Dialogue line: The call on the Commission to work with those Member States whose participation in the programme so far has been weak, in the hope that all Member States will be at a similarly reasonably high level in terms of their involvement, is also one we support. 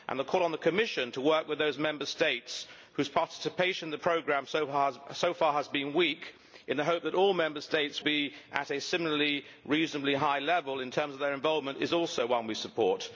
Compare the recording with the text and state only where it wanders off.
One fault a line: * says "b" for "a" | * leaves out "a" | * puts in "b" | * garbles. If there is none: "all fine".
* leaves out "will"